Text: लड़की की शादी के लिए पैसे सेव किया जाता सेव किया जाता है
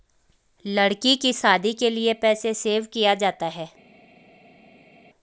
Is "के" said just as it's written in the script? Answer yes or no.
yes